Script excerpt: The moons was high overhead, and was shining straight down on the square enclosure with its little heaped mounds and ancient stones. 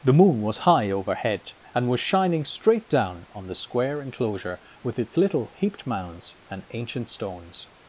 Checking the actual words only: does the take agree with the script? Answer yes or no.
no